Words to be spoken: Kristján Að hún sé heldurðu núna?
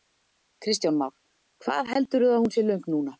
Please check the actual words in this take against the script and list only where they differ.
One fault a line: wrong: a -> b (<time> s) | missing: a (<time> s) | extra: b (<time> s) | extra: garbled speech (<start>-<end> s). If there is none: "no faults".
extra: Már Hvað heldurðu (1.0 s)
wrong: heldurðu -> löng (2.7 s)